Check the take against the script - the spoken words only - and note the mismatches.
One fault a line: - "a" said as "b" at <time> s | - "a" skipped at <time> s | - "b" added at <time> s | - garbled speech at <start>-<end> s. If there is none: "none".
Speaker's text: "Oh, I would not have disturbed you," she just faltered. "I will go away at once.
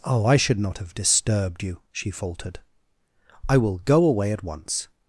- "would" said as "should" at 0.4 s
- "just" skipped at 2.1 s